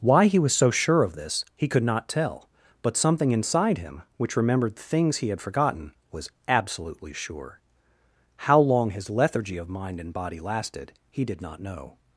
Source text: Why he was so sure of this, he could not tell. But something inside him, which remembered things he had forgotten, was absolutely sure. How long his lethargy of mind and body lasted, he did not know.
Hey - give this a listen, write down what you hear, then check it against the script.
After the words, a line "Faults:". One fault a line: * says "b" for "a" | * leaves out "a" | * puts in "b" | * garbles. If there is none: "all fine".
Why he was so sure of this, he could not tell. But something inside him, which remembered things he had forgotten, was absolutely sure. How long his lethargy of mind and body lasted, he did not know.
Faults:
all fine